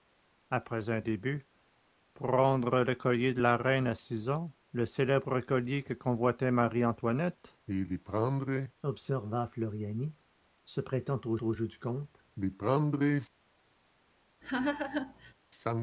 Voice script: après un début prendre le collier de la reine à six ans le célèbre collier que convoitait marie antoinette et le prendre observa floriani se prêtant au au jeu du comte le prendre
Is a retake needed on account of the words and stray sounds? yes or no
yes